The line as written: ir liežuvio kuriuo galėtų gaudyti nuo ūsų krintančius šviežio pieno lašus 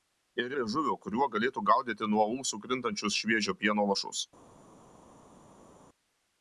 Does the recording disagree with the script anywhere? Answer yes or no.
no